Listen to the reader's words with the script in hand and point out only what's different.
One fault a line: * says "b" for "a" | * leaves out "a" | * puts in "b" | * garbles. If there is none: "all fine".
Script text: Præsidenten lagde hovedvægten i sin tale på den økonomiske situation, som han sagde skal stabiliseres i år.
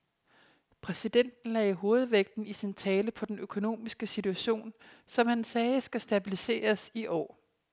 all fine